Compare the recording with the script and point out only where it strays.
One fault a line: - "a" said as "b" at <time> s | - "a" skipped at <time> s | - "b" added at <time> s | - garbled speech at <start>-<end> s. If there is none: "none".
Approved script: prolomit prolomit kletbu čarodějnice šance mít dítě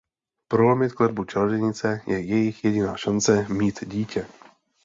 - "prolomit" skipped at 0.9 s
- "je jejich jediná" added at 2.1 s